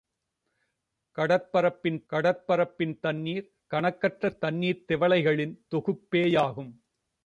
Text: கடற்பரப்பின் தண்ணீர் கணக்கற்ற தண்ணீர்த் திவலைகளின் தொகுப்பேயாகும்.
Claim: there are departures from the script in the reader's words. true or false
true